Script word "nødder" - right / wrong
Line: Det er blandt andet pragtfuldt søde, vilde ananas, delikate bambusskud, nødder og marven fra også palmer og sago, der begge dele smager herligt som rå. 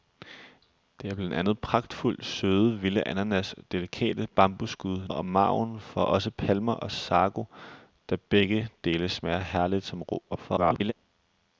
wrong